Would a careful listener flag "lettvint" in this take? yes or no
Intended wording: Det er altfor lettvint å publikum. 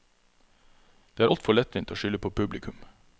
no